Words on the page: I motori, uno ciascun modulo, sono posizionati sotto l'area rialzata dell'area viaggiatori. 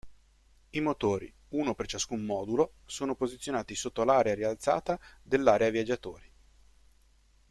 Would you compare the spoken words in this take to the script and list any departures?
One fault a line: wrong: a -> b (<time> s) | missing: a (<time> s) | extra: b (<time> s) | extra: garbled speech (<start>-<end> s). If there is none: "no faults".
extra: per (1.8 s)